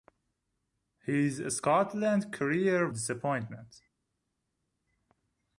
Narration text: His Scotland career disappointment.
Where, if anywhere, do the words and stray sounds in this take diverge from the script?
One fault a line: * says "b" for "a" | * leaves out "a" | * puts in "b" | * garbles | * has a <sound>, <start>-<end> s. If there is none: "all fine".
all fine